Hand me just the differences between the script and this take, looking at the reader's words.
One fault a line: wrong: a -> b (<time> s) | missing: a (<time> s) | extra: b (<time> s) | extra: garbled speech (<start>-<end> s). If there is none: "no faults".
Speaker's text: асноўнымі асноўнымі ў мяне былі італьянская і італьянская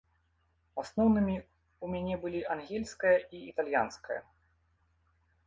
missing: асноўнымі (1.4 s)
wrong: італьянская -> ангельская (2.5 s)